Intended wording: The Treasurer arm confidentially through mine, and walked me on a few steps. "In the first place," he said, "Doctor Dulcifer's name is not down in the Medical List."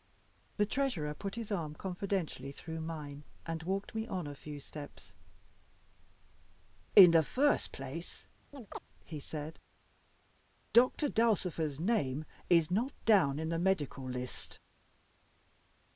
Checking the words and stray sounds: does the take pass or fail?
fail